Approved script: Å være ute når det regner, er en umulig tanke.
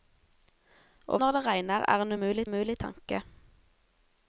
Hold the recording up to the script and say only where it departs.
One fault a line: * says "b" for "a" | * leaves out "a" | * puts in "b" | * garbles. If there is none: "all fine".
* leaves out "være ute"
* puts in "umulig"